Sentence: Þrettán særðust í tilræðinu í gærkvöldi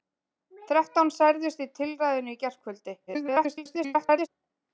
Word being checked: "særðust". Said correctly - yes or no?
yes